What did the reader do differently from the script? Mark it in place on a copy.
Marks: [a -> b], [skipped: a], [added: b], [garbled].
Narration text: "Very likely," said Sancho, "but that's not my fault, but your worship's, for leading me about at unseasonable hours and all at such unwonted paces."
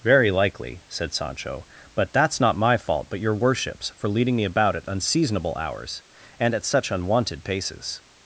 "Very likely," said Sancho, "but that's not my fault, but your worship's, for leading me about at unseasonable hours and [skipped: all] at such unwonted paces."